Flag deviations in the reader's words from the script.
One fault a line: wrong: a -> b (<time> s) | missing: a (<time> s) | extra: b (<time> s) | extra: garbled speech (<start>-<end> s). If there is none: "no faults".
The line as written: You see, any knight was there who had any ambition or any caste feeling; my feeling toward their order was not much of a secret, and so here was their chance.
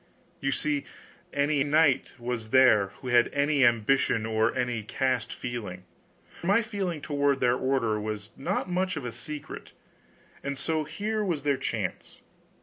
no faults